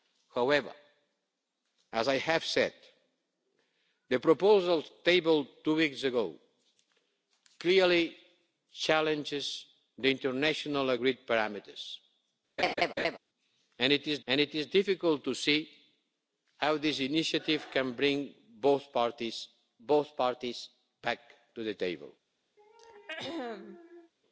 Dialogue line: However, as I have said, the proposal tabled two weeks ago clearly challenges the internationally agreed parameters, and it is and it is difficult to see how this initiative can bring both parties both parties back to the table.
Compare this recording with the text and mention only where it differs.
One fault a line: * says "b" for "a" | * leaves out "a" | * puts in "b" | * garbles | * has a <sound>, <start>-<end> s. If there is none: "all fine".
* has a laugh, 12.6-13.2 s
* has a throat clearing, 22.6-24.1 s